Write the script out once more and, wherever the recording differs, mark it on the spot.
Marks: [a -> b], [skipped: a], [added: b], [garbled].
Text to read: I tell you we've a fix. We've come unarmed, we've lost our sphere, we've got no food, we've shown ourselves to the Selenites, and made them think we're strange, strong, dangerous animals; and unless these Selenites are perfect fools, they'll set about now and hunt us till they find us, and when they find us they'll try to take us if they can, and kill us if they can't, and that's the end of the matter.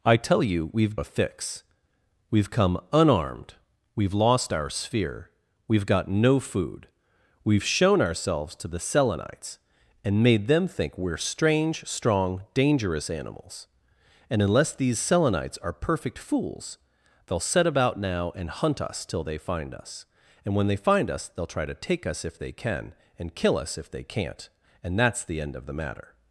I tell you we've a fix. We've come unarmed, we've lost our sphere, we've got no food, we've shown ourselves to the Selenites, and made them think we're strange, strong, dangerous animals; and unless these Selenites are perfect fools, they'll set about now and hunt us till they find us, and when they find us they'll try to take us if they can, and kill us if they can't, and that's the end of the matter.